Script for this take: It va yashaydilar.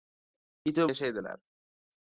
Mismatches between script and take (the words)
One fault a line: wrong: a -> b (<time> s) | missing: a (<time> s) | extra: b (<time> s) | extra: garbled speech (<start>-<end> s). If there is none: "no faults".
no faults